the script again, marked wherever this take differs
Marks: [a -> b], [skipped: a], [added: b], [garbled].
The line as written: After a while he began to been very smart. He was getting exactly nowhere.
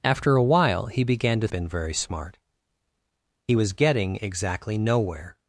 After a while he began to been very smart. He was getting exactly nowhere.